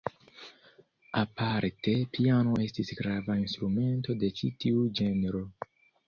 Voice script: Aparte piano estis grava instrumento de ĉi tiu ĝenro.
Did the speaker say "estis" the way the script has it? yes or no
yes